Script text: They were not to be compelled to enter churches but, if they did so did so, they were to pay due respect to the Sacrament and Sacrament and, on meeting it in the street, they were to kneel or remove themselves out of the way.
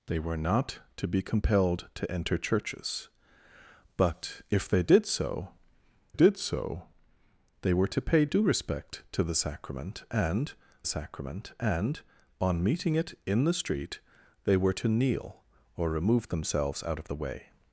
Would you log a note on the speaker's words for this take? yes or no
no